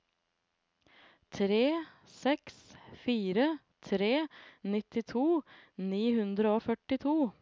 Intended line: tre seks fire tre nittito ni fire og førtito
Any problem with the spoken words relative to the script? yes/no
yes